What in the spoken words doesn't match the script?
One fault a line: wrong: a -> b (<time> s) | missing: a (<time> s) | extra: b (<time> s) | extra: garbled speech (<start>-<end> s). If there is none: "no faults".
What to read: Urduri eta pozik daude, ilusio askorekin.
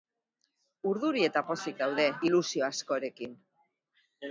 no faults